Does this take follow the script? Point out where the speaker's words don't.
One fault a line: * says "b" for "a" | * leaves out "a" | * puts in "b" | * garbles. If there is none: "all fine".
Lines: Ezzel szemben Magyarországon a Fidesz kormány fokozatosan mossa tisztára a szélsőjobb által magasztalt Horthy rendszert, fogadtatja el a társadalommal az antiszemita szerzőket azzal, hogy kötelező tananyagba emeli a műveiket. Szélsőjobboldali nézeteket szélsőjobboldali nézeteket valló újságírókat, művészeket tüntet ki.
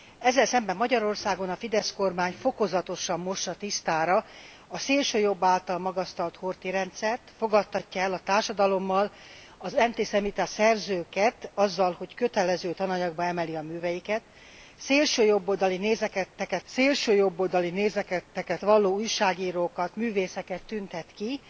all fine